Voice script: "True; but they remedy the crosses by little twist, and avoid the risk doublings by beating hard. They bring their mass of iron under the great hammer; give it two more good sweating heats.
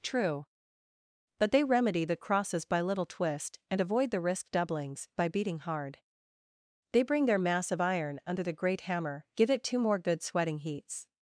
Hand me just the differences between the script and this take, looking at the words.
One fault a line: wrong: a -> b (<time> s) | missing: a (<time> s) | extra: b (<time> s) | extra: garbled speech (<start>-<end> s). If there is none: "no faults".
no faults